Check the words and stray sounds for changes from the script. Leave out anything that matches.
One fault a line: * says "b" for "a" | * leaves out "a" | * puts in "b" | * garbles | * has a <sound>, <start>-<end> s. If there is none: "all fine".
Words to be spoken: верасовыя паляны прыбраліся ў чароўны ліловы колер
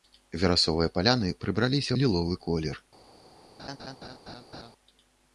* leaves out "ў чароўны"
* has a laugh, 3.6-4.7 s